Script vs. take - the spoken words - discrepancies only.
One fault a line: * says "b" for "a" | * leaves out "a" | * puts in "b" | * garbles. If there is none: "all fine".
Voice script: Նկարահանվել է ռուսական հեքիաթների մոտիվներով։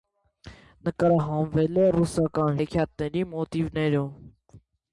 all fine